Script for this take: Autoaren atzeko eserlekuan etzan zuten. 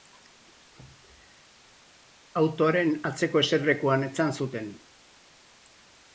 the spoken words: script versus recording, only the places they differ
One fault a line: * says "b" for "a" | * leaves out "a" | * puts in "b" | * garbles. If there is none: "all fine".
all fine